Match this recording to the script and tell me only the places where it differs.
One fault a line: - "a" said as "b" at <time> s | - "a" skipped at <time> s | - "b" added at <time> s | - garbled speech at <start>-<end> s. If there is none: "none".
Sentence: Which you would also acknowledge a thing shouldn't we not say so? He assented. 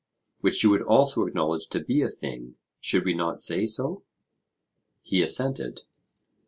- "to be" added at 1.7 s
- "shouldn't" said as "should" at 2.8 s